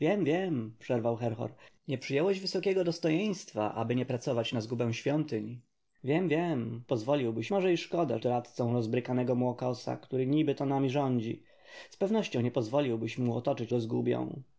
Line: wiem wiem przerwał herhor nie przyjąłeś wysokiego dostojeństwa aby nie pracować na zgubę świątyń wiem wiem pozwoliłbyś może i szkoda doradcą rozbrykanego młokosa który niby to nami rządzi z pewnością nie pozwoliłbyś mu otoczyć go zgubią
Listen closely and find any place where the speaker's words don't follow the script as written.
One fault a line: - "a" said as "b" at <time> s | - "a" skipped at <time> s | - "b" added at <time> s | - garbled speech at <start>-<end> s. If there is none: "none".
none